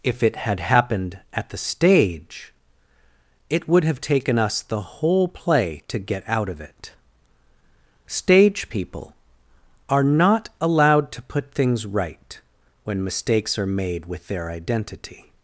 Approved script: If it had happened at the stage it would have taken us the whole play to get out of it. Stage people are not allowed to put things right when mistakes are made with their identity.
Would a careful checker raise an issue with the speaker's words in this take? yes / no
no